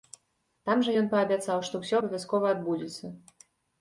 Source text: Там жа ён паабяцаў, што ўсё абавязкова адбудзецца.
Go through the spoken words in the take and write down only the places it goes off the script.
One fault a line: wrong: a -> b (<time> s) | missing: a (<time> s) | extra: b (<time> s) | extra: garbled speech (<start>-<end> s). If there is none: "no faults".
no faults